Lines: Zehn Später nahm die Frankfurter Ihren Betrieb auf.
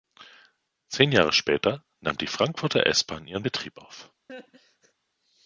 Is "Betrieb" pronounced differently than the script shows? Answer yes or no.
no